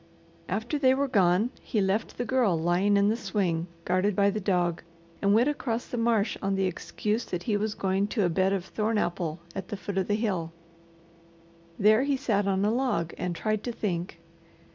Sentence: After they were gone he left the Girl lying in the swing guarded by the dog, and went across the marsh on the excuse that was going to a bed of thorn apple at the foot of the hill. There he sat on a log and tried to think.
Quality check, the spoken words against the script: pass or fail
fail